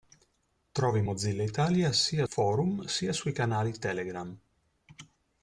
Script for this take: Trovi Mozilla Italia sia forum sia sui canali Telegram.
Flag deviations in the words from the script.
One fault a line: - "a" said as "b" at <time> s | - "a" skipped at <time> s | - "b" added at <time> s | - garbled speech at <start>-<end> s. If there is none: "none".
none